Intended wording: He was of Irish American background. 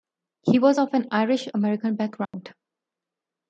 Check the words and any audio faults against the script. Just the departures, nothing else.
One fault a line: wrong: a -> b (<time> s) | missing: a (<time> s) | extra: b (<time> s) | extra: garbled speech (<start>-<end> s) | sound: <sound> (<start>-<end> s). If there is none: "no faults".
extra: an (0.9 s)
sound: dropout (2.3-2.3 s)